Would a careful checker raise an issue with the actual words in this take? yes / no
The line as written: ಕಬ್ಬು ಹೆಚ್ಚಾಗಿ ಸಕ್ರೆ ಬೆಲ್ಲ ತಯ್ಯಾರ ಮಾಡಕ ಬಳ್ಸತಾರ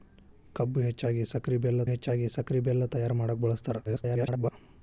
yes